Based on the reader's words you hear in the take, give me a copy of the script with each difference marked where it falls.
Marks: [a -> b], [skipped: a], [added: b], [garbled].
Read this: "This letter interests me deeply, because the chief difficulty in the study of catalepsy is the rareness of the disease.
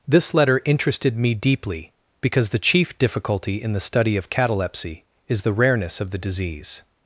"This letter [interests -> interested] me deeply, because the chief difficulty in the study of catalepsy is the rareness of the disease.